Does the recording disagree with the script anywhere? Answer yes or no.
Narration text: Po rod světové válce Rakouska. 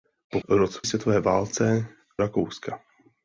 no